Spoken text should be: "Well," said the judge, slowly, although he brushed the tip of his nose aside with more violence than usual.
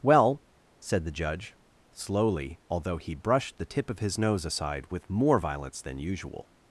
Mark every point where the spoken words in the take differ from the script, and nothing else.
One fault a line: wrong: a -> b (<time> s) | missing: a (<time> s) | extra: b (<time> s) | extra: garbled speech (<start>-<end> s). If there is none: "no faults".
no faults